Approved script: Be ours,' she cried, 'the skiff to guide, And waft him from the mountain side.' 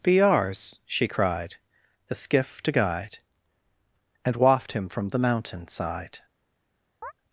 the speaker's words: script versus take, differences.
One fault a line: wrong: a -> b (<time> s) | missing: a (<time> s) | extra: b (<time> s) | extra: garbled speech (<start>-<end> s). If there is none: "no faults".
no faults